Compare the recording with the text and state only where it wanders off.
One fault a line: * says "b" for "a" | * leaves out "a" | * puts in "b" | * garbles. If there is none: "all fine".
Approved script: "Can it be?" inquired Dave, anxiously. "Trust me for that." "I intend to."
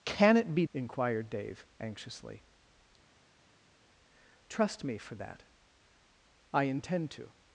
all fine